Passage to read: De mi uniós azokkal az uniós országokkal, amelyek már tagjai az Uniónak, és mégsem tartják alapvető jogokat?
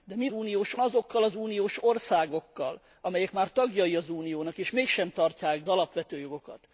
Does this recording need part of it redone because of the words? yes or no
no